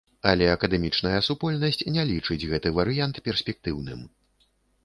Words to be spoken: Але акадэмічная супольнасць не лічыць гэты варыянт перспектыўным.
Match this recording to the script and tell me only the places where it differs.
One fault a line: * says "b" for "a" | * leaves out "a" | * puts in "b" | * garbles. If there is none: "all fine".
all fine